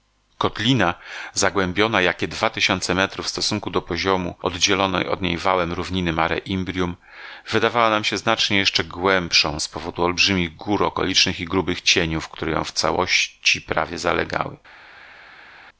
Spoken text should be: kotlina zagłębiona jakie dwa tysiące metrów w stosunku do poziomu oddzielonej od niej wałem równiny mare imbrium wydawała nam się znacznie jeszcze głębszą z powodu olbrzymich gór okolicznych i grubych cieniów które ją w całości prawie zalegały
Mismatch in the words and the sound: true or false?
false